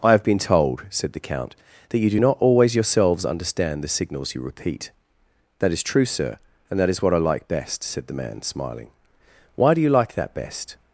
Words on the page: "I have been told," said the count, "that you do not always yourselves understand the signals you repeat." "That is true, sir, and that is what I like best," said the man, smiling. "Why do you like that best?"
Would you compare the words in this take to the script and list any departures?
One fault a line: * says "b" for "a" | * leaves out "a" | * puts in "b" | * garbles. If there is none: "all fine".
all fine